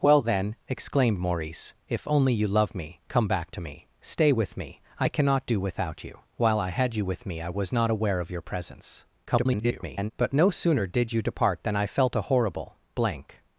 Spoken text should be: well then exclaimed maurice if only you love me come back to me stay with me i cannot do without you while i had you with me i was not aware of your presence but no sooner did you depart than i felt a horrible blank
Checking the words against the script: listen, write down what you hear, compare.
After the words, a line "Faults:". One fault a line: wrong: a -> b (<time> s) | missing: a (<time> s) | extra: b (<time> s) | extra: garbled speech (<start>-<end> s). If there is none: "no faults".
well then exclaimed maurice if only you love me come back to me stay with me i cannot do without you while i had you with me i was not aware of your presence [garbled] but no sooner did you depart than i felt a horrible blank
Faults:
extra: garbled speech (9.3-10.1 s)